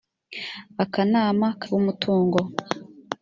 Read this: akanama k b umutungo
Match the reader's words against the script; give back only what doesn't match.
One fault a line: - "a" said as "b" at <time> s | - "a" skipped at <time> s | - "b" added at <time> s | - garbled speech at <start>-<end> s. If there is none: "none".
none